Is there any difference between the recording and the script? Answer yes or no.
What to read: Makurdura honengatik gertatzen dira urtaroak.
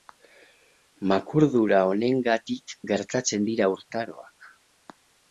no